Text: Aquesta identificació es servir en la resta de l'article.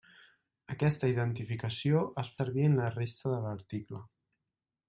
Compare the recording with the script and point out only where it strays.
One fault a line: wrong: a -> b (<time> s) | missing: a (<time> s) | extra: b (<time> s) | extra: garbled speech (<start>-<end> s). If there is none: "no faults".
no faults